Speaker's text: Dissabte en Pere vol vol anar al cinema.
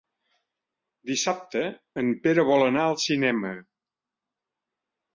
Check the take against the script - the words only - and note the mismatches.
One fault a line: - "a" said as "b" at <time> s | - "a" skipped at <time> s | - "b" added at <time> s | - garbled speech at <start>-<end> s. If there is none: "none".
- "vol" skipped at 2.7 s